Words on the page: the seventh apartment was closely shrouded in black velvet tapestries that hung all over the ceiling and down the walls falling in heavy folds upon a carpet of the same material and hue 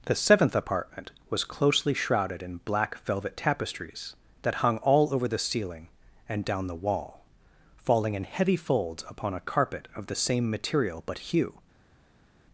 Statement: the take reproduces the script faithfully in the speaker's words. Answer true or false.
false